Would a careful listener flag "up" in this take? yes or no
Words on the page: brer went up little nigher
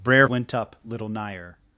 no